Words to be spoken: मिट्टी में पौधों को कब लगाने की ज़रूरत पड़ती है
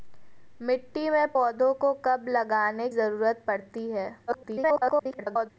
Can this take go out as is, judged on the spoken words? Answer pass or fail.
fail